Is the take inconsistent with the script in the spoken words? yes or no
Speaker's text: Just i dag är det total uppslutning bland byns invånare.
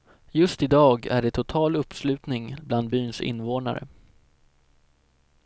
no